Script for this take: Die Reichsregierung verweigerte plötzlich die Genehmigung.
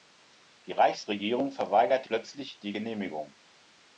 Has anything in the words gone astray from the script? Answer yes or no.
no